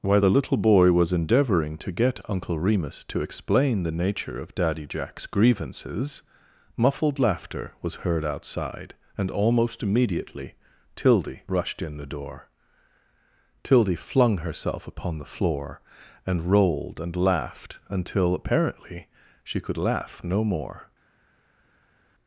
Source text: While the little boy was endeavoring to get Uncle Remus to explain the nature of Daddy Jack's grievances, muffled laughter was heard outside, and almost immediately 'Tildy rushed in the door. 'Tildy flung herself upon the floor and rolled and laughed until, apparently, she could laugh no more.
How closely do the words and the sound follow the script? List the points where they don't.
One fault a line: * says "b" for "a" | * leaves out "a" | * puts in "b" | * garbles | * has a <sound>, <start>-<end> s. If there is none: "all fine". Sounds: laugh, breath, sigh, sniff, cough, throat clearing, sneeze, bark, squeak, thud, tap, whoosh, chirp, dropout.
all fine